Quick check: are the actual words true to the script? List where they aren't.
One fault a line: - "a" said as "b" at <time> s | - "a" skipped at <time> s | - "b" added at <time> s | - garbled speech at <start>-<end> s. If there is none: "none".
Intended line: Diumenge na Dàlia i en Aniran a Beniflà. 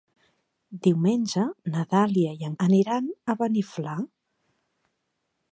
none